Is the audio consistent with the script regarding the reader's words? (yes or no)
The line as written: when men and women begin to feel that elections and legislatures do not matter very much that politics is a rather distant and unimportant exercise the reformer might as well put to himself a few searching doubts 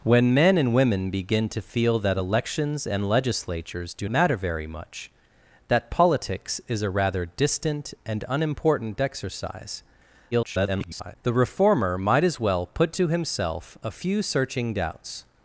no